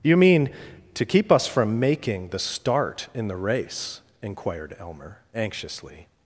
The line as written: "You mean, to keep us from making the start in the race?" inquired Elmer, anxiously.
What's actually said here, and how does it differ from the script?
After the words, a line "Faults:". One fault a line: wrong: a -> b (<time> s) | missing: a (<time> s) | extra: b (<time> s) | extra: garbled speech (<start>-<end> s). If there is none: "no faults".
"You mean, to keep us from making the start in the race?" inquired Elmer, anxiously.
Faults:
no faults